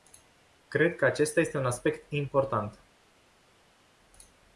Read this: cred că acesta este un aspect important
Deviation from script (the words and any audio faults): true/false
false